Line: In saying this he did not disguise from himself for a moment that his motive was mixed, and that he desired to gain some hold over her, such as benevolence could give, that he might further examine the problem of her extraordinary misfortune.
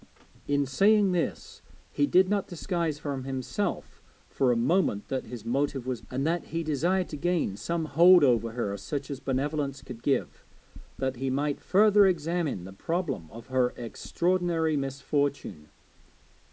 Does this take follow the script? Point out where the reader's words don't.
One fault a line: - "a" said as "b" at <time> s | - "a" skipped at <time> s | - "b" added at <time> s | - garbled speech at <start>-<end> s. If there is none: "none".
- "mixed" skipped at 6.0 s